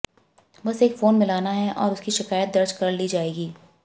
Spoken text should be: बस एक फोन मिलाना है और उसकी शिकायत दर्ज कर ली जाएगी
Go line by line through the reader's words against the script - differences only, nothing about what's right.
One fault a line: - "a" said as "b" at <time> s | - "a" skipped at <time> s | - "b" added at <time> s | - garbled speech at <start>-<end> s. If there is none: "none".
none